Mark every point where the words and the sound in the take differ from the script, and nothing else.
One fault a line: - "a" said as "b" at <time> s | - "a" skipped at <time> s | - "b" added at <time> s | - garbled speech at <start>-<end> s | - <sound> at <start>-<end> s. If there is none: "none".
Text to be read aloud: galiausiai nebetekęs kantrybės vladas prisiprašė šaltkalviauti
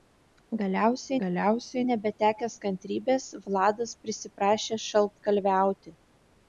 - "galiausiai" added at 1.2 s